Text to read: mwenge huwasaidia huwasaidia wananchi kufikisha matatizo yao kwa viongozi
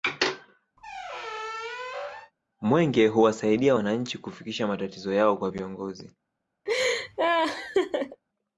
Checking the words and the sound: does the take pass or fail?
fail